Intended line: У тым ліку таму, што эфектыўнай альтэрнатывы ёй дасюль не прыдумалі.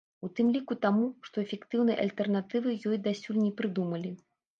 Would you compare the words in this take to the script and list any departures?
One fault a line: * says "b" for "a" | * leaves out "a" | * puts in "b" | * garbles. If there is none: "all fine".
all fine